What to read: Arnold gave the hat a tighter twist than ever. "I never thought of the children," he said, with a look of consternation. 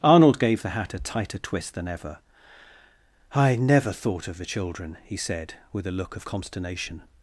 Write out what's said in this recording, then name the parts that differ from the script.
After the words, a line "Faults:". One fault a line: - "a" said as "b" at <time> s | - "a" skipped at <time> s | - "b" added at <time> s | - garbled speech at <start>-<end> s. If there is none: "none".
Arnold gave the hat a tighter twist than ever. "I never thought of the children," he said, with a look of consternation.
Faults:
none